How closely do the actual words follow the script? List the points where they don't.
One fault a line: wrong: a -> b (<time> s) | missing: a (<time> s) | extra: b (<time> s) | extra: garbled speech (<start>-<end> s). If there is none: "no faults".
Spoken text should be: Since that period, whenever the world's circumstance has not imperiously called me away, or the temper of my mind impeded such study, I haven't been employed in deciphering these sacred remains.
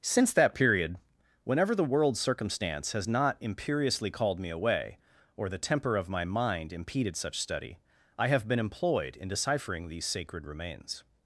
wrong: haven't -> have (8.3 s)